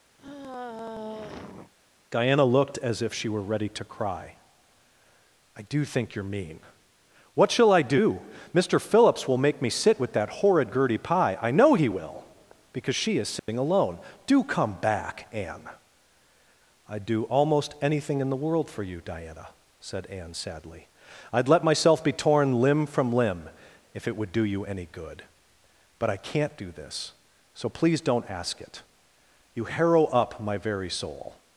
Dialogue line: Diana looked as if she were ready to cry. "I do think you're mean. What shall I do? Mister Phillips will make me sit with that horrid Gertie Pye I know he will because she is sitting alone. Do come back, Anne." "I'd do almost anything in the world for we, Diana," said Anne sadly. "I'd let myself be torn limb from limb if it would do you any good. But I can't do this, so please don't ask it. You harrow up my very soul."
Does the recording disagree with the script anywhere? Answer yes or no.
yes